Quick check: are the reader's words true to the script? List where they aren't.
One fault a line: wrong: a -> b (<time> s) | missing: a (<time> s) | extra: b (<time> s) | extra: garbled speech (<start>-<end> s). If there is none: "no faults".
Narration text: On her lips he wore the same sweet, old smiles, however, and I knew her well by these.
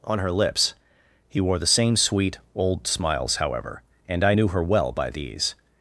no faults